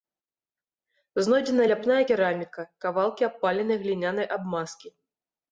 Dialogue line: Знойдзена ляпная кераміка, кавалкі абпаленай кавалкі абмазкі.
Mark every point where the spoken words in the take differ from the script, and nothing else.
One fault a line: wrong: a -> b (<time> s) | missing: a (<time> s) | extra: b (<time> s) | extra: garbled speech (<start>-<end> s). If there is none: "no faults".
wrong: кавалкі -> глінянай (3.8 s)